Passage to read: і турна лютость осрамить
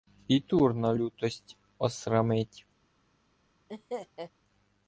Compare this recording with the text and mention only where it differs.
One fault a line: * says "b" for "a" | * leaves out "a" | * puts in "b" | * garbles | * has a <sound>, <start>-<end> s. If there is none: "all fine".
* has a laugh, 3.7-4.3 s